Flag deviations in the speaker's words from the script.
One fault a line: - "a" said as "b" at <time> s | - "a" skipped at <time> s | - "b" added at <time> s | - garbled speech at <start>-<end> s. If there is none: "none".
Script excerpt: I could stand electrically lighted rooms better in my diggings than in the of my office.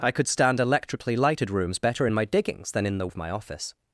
none